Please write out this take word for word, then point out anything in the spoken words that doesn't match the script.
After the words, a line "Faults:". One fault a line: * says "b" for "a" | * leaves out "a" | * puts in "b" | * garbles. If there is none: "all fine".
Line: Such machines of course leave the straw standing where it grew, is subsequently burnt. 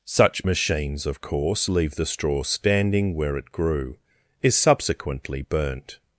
Such machines of course leave the straw standing where it grew, is subsequently burnt.
Faults:
all fine